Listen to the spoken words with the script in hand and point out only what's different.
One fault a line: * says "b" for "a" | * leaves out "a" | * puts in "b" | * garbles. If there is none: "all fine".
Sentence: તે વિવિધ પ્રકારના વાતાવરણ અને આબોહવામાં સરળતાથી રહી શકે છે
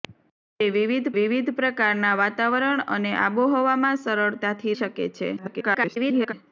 * puts in "વિવિધ"
* leaves out "રહી"
* garbles